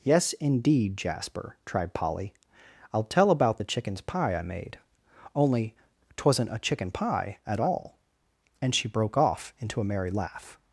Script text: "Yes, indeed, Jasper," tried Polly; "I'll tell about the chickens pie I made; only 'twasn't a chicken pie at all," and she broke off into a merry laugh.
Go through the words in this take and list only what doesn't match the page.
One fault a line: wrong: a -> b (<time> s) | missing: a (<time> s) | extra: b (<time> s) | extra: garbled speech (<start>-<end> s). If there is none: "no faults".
no faults